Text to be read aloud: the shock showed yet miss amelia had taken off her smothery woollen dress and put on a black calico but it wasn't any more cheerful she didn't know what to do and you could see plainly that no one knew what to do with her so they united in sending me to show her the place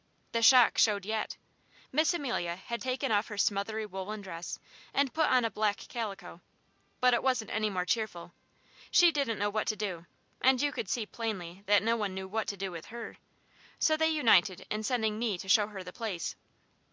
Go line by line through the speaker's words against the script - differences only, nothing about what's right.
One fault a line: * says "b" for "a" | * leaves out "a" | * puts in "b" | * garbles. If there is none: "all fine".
all fine